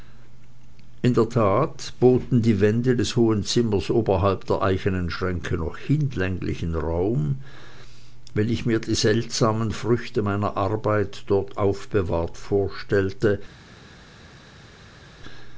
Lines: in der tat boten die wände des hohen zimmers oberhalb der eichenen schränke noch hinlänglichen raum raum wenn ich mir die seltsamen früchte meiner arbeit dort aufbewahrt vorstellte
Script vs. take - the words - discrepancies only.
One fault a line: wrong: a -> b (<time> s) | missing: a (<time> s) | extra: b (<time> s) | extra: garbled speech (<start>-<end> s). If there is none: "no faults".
missing: raum (7.4 s)